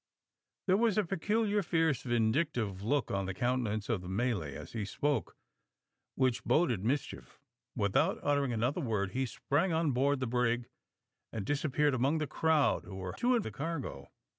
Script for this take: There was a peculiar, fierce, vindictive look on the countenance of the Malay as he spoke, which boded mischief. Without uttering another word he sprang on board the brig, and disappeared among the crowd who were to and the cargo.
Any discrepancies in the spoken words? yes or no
no